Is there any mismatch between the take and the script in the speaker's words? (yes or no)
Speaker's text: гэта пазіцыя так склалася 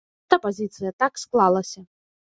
no